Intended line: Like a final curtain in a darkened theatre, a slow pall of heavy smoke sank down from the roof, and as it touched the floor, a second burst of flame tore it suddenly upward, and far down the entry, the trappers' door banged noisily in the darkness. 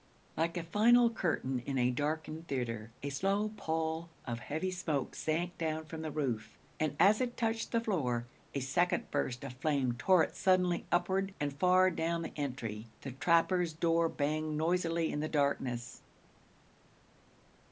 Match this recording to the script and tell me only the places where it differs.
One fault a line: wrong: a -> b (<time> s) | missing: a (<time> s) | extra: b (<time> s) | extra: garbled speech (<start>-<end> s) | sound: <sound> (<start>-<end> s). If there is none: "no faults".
no faults